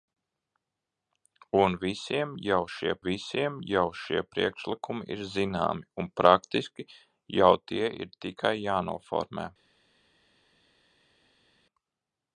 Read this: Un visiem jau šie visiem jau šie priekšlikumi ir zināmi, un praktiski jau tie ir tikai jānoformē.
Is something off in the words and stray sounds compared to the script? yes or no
no